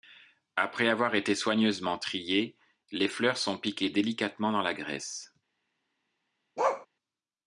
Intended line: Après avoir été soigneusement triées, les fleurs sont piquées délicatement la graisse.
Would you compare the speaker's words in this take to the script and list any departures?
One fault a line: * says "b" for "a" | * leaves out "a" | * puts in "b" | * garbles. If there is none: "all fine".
* puts in "dans"